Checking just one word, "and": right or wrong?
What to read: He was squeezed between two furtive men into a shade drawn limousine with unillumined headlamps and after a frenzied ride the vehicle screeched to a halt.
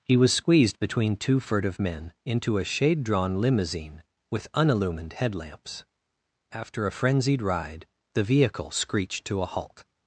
wrong